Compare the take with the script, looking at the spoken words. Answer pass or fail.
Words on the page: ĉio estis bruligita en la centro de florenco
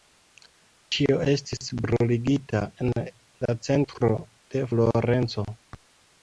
pass